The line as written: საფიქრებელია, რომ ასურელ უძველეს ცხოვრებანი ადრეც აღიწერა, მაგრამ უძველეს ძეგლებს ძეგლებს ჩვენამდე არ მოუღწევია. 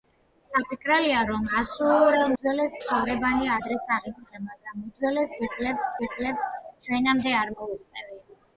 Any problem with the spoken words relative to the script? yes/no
no